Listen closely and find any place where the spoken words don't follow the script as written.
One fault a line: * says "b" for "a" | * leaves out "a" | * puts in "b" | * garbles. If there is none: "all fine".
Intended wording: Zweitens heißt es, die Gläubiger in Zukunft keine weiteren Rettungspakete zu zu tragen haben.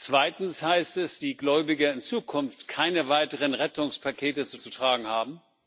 all fine